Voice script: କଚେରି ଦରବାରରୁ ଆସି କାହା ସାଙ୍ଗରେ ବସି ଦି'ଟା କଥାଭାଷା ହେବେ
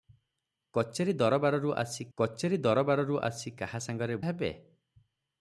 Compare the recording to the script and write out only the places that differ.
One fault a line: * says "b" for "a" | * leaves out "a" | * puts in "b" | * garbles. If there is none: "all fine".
* says "କଚେରି ଦରବାରରୁ ଆସି କାହା ସାଙ୍ଗରେ" for "କାହା ସାଙ୍ଗରେ ବସି ଦି'ଟା କଥାଭାଷା"